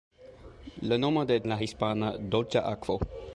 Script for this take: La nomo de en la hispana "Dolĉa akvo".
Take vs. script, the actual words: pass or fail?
pass